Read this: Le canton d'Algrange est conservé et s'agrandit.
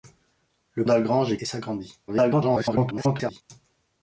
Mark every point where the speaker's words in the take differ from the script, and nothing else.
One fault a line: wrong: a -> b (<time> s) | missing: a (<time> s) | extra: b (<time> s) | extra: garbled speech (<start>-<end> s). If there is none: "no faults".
missing: canton (0.8 s)
missing: conservé (1.4 s)
extra: garbled speech (2.1-3.4 s)